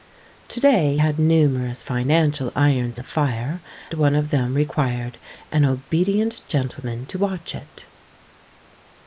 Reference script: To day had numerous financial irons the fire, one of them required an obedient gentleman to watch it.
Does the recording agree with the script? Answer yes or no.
yes